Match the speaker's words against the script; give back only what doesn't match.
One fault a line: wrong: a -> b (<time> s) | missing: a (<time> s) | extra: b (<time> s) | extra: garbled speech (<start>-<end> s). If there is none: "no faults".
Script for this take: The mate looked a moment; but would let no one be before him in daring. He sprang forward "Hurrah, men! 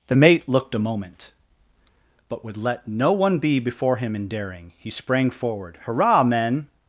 no faults